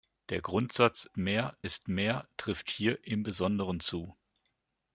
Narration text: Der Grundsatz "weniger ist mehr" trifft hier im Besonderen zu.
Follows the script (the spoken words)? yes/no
no